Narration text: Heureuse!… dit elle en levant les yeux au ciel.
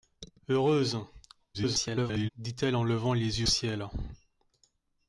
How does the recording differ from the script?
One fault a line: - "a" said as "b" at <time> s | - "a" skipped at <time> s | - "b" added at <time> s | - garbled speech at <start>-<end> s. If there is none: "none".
- garbled speech at 1.5-2.3 s
- "au" skipped at 3.5 s